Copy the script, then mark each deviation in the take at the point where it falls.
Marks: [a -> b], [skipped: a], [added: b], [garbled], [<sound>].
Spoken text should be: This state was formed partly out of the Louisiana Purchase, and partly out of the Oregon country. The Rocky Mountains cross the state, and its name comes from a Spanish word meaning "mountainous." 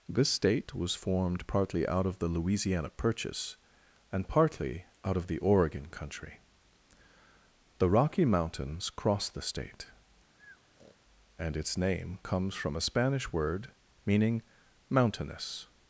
This state was formed partly out of the Louisiana Purchase, and partly out of the Oregon country. The Rocky Mountains cross the state, [breath] and its name comes from a Spanish word meaning "mountainous."